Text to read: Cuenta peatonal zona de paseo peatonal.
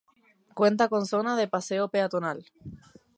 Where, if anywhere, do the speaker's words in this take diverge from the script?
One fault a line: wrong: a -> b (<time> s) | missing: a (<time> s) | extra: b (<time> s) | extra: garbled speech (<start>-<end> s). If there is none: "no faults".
wrong: peatonal -> con (0.9 s)